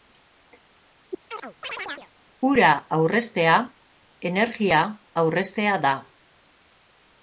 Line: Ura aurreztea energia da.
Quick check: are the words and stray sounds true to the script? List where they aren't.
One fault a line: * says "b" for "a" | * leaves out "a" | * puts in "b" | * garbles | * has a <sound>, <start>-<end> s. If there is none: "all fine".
* has a chirp, 1.3-2.1 s
* puts in "aurreztea"